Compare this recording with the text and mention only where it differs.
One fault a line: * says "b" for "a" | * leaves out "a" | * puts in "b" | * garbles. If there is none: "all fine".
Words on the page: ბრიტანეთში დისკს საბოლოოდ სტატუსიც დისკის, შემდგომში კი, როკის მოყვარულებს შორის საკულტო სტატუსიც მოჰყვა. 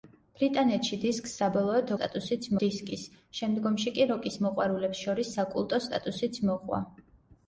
all fine